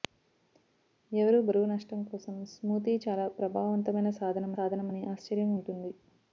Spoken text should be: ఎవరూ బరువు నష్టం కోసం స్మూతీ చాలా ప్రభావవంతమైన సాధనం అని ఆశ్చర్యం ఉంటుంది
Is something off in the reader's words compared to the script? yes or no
yes